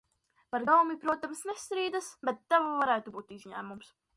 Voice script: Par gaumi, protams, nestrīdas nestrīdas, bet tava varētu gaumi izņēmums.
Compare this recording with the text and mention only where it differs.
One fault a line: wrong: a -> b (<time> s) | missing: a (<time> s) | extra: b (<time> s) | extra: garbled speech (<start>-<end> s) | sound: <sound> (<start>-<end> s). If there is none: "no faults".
missing: nestrīdas (2.1 s)
wrong: gaumi -> būt (3.2 s)